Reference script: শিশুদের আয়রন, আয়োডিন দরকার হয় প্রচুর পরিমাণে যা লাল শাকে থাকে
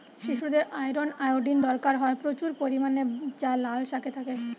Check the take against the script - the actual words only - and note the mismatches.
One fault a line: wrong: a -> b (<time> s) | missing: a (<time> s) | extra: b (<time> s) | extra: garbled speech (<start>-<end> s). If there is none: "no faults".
no faults